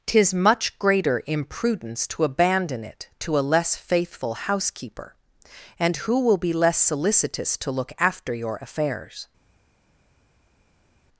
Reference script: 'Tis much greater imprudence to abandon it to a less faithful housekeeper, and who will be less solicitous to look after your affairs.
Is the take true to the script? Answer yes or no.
yes